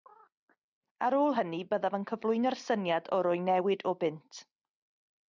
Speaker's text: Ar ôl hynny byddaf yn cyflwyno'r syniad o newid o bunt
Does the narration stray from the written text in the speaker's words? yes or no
yes